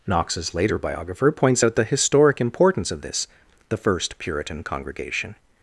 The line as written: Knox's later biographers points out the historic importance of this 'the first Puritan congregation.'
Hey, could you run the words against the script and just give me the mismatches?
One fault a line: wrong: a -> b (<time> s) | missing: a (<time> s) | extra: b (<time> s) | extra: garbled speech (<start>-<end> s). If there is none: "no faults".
wrong: biographers -> biographer (0.8 s)